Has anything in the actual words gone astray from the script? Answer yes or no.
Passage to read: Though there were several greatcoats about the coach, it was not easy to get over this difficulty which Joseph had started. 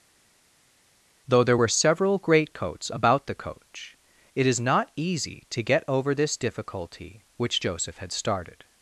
yes